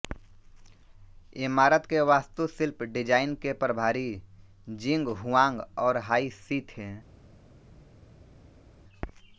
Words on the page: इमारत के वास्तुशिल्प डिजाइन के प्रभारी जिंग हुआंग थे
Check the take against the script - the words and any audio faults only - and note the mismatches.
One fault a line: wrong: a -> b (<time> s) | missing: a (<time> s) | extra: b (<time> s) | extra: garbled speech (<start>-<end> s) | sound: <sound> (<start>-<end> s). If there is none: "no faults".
extra: और हाई शी (5.8 s)